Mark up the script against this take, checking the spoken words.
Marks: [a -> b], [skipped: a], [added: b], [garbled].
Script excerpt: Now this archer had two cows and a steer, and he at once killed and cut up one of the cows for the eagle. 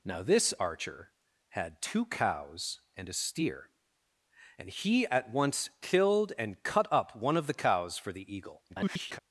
Now this archer had two cows and a steer, and he at once killed and cut up one of the cows for the eagle. [garbled]